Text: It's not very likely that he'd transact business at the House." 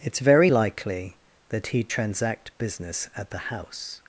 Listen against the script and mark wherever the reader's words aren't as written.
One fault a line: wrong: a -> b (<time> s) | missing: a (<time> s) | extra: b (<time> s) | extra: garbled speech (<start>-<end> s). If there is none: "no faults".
missing: not (0.2 s)